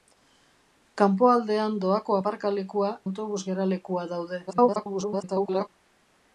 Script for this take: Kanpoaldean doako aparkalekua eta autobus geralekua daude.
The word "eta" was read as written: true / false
false